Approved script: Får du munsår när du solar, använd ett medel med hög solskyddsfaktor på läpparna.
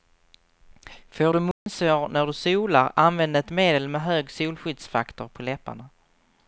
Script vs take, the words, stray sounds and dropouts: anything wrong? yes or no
yes